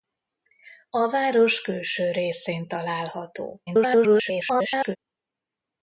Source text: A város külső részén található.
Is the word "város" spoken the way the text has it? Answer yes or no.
yes